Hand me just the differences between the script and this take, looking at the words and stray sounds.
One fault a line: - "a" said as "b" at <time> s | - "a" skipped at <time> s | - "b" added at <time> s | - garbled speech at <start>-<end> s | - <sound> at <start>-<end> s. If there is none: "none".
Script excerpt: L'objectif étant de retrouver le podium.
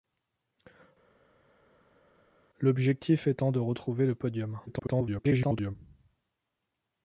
- garbled speech at 4.7-5.8 s